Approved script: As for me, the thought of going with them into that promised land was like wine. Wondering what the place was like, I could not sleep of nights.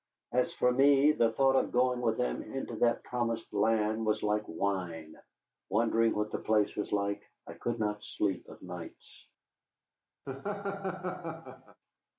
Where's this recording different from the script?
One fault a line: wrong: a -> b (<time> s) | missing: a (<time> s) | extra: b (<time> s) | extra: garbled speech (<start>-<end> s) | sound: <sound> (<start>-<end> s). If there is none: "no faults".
sound: laugh (10.2-11.8 s)